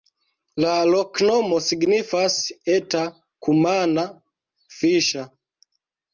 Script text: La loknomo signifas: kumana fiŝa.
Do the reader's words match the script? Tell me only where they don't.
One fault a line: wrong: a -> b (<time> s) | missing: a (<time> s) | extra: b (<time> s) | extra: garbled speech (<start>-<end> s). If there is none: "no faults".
extra: eta (2.8 s)